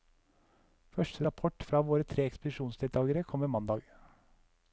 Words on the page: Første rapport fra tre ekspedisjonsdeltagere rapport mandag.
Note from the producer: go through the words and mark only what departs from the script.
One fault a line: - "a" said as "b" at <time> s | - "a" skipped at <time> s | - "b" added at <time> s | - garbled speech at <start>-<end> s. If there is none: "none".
- "våre" added at 1.9 s
- "rapport" said as "kommer" at 3.3 s